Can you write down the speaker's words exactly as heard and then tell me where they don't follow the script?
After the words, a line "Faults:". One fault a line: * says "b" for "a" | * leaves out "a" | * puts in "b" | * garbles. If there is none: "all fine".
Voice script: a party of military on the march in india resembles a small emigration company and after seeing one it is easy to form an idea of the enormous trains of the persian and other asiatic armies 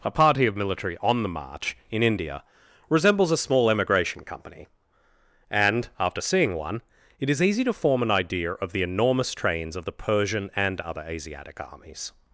a party of military on the march in india resembles a small emigration company and after seeing one it is easy to form an idea of the enormous trains of the persian and other asiatic armies
Faults:
all fine